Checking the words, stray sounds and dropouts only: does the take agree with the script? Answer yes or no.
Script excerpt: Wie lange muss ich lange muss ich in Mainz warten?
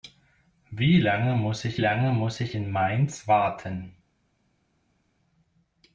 yes